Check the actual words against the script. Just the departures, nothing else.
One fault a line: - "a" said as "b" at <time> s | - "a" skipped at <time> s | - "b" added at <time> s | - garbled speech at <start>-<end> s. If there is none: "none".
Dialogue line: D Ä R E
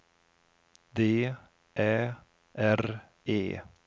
none